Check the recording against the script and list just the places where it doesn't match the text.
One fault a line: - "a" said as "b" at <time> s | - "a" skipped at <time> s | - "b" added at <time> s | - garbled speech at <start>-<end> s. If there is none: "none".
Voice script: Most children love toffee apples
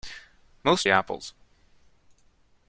- "children love toffee" skipped at 0.9 s